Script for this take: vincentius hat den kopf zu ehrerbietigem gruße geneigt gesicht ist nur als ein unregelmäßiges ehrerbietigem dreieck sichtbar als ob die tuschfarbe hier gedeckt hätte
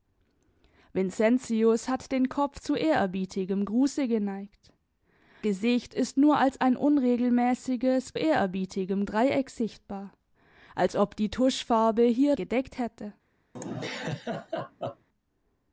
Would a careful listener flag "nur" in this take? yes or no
no